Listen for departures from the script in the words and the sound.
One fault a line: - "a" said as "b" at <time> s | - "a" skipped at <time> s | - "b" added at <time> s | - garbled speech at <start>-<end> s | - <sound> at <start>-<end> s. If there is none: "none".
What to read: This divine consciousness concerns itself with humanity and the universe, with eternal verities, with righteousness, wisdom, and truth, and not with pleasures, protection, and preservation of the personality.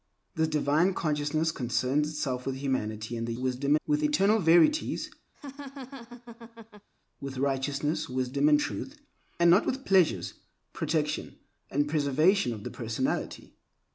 - "universe" said as "wisdom" at 3.4 s
- laugh at 5.3-6.9 s